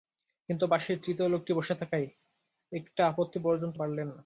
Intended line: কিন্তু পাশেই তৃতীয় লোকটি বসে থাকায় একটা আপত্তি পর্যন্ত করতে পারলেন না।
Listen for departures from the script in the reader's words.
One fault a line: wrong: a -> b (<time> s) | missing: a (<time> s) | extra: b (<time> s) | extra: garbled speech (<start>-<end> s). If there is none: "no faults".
missing: করতে (3.8 s)